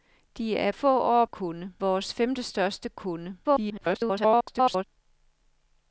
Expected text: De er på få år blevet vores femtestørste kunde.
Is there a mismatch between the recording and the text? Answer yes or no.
yes